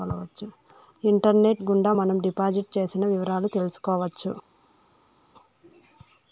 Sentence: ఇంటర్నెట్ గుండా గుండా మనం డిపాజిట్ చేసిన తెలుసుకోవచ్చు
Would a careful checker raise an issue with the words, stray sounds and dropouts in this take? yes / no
yes